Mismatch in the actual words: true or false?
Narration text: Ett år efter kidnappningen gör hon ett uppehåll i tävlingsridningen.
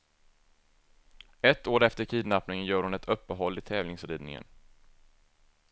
false